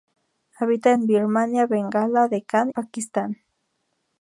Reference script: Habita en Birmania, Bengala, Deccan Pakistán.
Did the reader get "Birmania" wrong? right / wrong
right